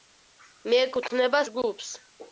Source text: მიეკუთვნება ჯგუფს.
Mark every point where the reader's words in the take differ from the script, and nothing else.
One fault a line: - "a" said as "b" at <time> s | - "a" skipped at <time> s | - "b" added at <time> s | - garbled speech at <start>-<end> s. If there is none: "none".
none